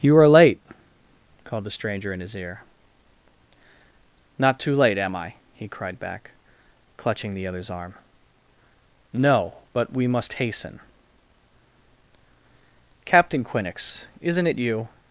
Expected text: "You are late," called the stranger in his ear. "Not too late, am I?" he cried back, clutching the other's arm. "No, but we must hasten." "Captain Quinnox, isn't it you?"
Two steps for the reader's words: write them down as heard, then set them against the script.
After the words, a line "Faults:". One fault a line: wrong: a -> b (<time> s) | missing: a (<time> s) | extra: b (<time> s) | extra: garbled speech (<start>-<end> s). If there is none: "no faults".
"You are late," called the stranger in his ear. "Not too late, am I?" he cried back, clutching the other's arm. "No, but we must hasten." "Captain Quinnox, isn't it you?"
Faults:
no faults